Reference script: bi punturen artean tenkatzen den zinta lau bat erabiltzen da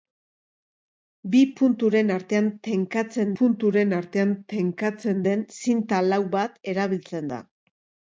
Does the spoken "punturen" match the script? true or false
true